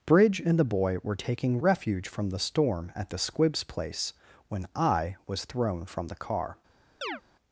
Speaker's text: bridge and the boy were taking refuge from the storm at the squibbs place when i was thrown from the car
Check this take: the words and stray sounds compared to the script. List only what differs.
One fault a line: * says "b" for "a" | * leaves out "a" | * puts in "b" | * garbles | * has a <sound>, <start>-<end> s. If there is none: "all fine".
* has a chirp, 7.0-7.2 s